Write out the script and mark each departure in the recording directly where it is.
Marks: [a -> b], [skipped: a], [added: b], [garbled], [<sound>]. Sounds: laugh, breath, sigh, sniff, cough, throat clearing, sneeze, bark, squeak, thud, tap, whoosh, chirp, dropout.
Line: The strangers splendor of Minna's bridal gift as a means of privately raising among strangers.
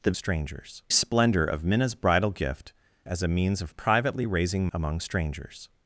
The strangers splendor of Minna's bridal gift as a means of privately raising among strangers.